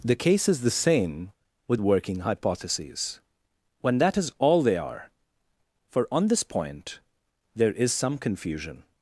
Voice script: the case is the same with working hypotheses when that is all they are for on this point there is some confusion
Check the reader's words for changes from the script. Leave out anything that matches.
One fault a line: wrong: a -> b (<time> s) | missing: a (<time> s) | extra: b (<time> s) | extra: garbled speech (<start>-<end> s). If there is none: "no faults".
no faults